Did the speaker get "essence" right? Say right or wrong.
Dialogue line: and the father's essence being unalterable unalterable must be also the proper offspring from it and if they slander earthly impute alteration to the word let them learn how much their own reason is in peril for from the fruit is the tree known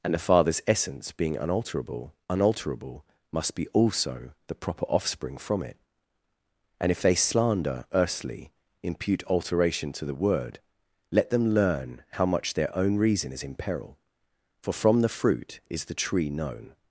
right